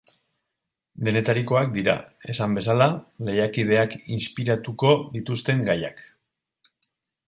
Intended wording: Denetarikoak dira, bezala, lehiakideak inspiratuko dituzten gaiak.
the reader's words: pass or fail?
fail